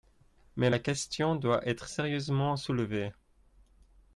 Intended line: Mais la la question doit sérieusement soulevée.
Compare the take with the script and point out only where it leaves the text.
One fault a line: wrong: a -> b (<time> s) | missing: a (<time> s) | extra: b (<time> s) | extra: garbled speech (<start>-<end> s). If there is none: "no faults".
missing: la (0.8 s)
extra: être (1.7 s)